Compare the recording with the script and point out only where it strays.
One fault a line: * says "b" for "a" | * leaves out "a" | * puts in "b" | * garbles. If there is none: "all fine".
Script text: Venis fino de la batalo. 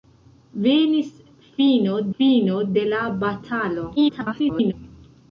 * puts in "fino"
* garbles